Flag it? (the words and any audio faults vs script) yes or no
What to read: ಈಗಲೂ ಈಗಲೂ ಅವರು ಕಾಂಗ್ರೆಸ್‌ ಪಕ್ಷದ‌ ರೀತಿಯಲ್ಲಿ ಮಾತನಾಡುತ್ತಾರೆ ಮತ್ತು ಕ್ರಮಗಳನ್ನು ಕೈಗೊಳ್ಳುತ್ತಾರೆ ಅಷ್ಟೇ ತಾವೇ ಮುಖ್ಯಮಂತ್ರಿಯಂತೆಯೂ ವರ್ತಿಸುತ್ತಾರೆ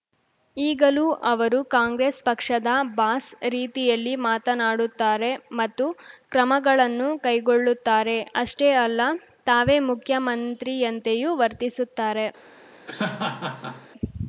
yes